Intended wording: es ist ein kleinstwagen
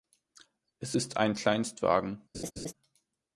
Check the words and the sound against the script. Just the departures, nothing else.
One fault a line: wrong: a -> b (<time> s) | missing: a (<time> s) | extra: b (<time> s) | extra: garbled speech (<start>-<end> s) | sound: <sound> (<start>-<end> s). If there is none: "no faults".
sound: laugh (2.3-2.7 s)